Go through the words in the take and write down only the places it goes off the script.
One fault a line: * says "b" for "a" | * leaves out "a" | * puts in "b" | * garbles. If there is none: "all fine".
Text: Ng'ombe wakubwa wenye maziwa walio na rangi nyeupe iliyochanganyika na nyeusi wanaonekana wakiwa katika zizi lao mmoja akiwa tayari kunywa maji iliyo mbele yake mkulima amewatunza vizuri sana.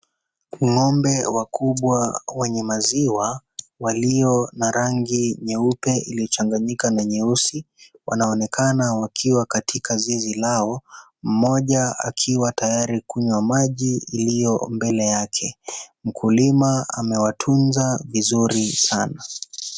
all fine